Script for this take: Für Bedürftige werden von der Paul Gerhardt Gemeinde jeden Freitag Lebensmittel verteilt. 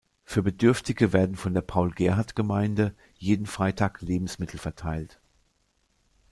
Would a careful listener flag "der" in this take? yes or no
no